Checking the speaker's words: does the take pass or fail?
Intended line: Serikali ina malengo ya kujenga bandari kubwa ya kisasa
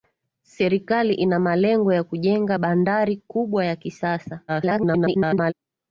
fail